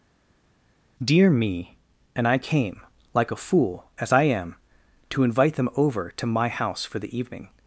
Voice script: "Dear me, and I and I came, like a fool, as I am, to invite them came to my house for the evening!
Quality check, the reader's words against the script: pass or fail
fail